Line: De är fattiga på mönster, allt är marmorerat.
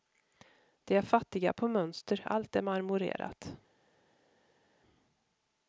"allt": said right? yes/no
yes